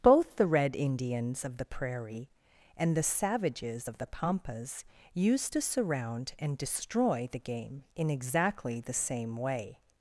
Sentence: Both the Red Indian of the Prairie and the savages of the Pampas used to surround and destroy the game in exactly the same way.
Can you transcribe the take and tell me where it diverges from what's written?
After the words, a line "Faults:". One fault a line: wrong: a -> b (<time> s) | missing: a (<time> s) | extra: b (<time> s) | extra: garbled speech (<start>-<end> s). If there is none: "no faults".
Both the Red Indians of the Prairie and the savages of the Pampas used to surround and destroy the game in exactly the same way.
Faults:
wrong: Indian -> Indians (0.8 s)